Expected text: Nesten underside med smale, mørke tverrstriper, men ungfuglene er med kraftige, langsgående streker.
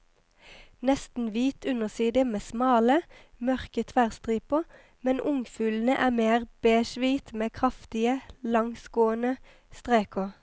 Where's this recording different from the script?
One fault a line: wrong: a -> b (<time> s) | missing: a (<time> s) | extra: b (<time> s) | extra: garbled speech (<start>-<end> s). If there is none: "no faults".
extra: hvit (1.3 s)
extra: mer beigehvit (6.1 s)